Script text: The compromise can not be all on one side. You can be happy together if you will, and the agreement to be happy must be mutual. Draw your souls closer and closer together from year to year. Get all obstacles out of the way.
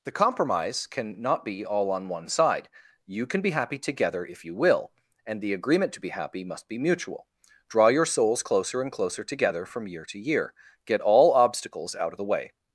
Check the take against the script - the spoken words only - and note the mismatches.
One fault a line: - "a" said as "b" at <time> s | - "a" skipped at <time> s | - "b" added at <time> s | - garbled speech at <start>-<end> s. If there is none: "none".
none